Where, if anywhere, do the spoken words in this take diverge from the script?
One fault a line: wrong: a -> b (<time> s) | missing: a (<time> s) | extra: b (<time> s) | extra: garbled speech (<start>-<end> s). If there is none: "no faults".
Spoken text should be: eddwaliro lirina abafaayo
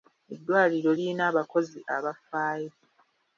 extra: abakozi (1.3 s)